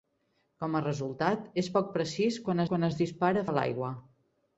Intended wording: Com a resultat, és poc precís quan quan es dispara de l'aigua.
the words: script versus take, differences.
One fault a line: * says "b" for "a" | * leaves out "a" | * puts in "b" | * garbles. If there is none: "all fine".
all fine